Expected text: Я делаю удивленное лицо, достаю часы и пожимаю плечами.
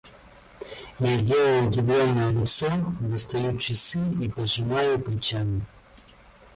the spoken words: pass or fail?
pass